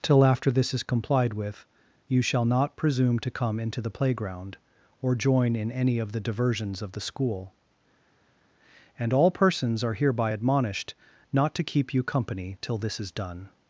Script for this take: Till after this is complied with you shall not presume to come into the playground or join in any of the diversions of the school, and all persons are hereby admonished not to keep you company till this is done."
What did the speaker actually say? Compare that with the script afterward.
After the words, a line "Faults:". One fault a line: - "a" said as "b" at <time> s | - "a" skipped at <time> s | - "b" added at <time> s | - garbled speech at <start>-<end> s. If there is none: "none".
Till after this is complied with you shall not presume to come into the playground or join in any of the diversions of the school, and all persons are hereby admonished not to keep you company till this is done."
Faults:
none